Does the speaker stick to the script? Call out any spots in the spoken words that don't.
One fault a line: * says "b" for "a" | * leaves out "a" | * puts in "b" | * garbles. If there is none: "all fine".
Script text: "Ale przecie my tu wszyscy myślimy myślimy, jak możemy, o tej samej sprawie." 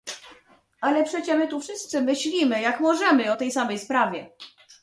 * leaves out "myślimy"